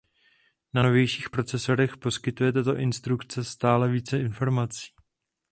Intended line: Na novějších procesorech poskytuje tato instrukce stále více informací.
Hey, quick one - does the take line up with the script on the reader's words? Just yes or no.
yes